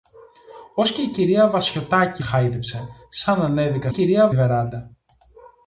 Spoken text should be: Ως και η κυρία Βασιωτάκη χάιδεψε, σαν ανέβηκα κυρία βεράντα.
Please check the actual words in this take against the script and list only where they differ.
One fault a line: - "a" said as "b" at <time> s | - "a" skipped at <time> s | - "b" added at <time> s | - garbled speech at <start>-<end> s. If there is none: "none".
none